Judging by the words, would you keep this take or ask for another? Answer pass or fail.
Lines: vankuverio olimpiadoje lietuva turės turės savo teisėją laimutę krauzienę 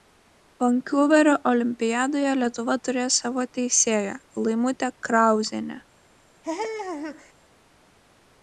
fail